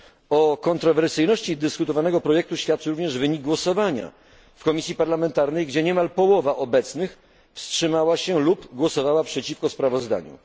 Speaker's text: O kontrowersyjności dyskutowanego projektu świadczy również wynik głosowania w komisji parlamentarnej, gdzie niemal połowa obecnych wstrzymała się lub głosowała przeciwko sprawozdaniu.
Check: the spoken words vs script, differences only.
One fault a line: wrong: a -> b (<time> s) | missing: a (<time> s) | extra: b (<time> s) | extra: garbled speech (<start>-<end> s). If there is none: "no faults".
no faults